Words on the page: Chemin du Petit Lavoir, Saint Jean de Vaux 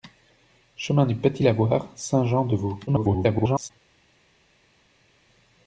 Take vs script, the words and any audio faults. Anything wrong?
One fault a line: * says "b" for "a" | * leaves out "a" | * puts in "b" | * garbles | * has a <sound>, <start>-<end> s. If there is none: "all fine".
* garbles